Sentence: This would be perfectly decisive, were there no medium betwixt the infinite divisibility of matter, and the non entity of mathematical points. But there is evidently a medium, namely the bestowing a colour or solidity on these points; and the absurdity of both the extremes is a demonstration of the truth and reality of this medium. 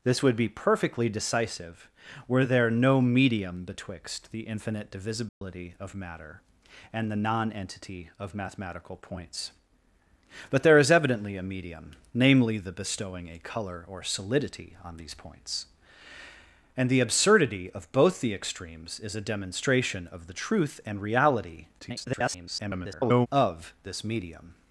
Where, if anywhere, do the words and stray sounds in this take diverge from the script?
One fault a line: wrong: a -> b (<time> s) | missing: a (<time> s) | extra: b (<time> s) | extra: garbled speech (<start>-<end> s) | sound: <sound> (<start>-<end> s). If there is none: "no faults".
sound: dropout (5.3-5.4 s)
extra: garbled speech (21.8-23.3 s)